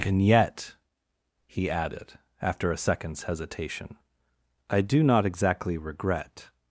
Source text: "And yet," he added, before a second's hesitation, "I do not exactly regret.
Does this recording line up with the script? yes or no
no